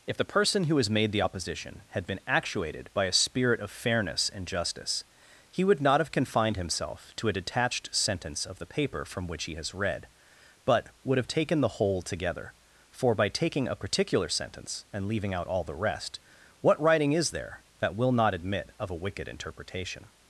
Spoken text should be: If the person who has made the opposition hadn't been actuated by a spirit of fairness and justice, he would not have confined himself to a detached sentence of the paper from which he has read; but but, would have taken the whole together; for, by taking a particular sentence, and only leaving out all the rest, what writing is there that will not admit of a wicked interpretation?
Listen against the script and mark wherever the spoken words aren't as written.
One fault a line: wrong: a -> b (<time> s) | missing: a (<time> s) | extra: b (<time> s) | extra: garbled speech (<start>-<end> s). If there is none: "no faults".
wrong: hadn't -> had (1.9 s)
missing: but (10.9 s)
missing: only (15.1 s)